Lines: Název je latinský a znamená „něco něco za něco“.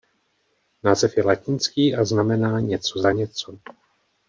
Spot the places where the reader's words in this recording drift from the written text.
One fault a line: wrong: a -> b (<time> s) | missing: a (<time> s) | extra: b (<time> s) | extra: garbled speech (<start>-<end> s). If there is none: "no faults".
missing: něco (3.0 s)